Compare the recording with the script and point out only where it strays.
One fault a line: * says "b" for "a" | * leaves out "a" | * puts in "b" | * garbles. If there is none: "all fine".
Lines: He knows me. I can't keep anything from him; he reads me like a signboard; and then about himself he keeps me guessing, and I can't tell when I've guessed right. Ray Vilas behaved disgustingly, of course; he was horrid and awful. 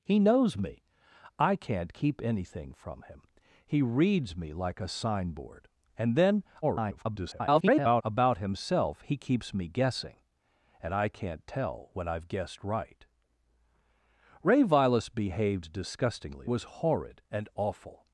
* garbles
* leaves out "of course he"